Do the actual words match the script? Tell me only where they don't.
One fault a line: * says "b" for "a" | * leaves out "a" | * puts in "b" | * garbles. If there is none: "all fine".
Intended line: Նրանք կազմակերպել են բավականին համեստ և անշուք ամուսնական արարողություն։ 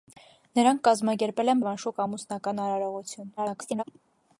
* leaves out "բավականին համեստ"
* garbles